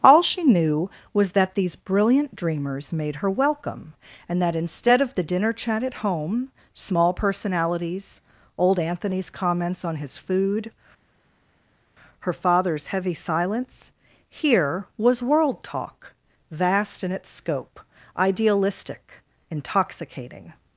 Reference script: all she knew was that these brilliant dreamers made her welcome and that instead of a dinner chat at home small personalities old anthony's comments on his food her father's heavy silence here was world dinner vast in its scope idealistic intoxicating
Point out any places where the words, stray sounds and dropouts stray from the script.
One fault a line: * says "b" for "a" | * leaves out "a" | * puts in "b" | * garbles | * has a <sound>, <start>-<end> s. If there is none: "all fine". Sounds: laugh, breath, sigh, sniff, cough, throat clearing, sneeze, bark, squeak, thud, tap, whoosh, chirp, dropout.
* says "the" for "a"
* says "talk" for "dinner"